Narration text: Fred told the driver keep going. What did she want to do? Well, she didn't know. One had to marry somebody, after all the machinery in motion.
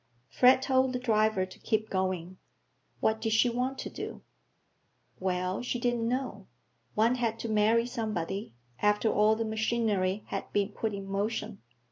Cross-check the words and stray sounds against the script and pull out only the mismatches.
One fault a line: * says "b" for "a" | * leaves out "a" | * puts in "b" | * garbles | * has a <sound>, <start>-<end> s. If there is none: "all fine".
* puts in "to"
* puts in "had been put"